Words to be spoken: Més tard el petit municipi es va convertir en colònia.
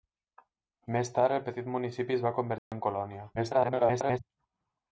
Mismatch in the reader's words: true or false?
true